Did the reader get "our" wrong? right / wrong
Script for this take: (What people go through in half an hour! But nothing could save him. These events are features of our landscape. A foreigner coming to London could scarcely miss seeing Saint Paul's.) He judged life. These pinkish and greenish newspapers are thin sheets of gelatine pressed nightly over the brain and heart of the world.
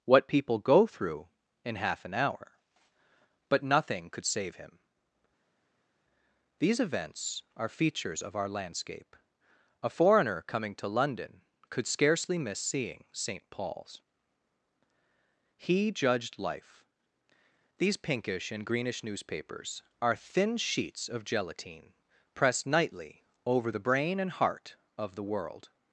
right